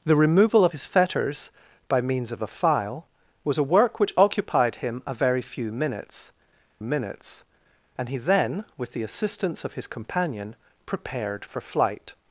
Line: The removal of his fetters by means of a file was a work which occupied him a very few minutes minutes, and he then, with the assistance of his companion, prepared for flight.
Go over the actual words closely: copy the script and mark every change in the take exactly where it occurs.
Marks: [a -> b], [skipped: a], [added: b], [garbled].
The removal of his fetters by means of a file was a work which occupied him a very few minutes minutes, and he then, with the assistance of his companion, prepared for flight.